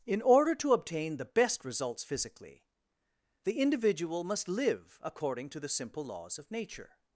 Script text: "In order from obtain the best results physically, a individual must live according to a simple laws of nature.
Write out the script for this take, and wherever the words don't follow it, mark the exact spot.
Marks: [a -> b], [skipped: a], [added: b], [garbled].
"In order [from -> to] obtain the best results physically, [a -> the] individual must live according to [a -> the] simple laws of nature.